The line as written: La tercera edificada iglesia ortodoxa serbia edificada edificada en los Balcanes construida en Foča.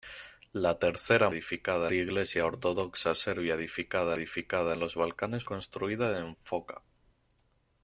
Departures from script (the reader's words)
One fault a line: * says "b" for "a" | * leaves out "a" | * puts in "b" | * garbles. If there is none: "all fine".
all fine